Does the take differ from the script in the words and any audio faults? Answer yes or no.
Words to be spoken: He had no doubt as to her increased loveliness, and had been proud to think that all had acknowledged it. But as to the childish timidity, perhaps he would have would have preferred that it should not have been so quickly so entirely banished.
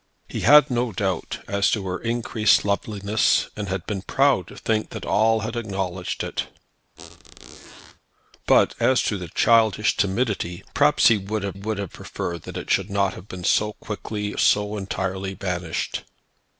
yes